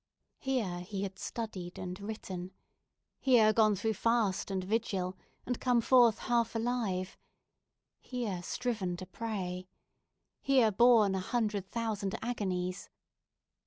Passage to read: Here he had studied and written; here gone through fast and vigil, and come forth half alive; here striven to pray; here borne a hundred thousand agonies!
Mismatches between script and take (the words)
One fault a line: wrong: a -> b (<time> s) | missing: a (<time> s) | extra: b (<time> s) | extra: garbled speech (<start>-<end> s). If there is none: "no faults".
no faults